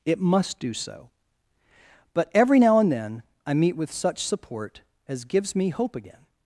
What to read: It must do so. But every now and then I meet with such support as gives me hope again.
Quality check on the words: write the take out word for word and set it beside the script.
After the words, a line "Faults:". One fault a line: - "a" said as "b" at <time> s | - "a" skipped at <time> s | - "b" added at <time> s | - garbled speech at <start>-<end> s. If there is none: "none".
It must do so. But every now and then I meet with such support as gives me hope again.
Faults:
none